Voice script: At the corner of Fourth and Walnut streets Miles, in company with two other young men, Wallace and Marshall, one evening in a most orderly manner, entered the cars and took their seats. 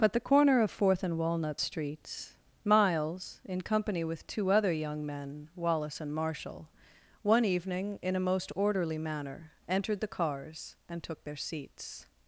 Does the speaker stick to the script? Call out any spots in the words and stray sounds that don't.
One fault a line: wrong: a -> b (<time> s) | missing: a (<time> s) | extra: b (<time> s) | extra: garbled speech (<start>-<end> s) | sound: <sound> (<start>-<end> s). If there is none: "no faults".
wrong: At -> But (0.0 s)